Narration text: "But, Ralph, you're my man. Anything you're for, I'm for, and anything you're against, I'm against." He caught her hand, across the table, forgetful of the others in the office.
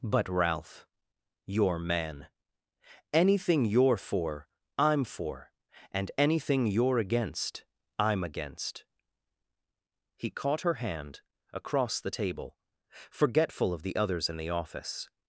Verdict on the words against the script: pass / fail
fail